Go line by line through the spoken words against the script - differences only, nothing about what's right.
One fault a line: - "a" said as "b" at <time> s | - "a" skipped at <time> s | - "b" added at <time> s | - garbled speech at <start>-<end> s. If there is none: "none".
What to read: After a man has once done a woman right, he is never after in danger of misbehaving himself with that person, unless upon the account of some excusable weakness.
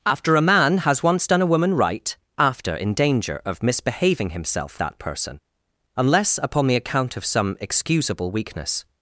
- "he is never" skipped at 2.2 s
- "with" skipped at 4.8 s